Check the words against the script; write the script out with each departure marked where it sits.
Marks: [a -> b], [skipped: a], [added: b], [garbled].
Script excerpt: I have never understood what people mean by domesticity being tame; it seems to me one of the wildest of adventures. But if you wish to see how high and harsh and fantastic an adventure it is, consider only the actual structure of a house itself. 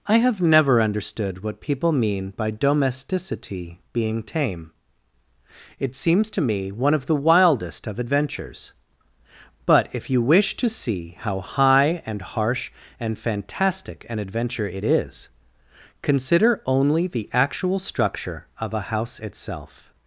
I have never understood what people mean by domesticity being tame; it seems to me one of the wildest of adventures. But if you wish to see how high and harsh and fantastic an adventure it is, consider only the actual structure of a house itself.